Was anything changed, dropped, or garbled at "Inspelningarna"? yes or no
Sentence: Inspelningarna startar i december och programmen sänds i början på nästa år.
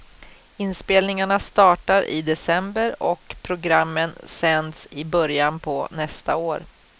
no